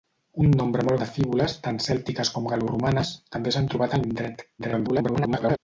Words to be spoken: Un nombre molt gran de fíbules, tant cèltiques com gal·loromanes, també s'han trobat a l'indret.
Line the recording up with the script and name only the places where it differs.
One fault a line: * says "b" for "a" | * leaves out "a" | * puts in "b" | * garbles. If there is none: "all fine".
* leaves out "gran"
* garbles